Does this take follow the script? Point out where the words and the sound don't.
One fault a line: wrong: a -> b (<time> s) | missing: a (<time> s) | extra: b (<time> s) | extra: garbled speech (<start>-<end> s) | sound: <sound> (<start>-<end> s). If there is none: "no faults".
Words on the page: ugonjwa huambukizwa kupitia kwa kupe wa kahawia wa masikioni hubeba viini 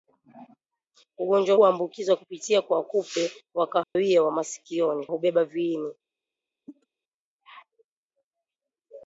sound: dropout (3.8-4.0 s)
sound: cough (6.7-6.9 s)